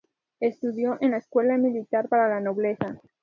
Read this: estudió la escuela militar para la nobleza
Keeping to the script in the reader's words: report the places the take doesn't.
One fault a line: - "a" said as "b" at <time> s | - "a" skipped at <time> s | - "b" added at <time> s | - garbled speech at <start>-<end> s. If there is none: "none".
- "en" added at 1.0 s